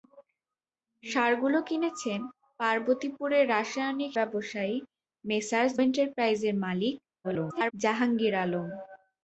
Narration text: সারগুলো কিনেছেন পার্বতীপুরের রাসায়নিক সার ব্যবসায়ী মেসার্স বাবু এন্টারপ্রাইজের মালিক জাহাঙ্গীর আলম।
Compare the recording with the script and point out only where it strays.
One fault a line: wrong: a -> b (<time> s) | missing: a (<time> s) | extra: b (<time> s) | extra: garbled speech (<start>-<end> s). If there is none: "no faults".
missing: সার (4.1 s)
missing: বাবু (5.7 s)
extra: garbled speech (7.2-7.7 s)